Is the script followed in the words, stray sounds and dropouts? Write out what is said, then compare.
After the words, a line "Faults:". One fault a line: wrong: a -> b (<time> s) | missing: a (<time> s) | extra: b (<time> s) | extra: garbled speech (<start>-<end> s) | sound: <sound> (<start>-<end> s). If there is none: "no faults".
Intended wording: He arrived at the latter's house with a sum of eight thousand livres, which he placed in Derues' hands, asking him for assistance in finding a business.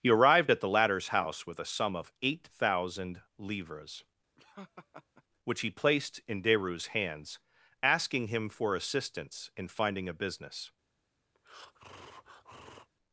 He arrived at the latter's house with a sum of eight thousand livres, which he placed in Derues' hands, asking him for assistance in finding a business.
Faults:
sound: laugh (4.4-5.2 s)
sound: breath (11.3-12.9 s)